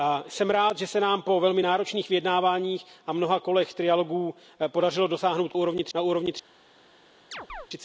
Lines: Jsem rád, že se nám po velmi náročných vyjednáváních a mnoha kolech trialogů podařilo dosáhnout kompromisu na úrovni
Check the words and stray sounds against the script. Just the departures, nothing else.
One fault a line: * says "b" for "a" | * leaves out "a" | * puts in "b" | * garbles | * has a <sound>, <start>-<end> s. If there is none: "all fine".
* says "úrovni" for "kompromisu"
* has a chirp, 7.3-7.7 s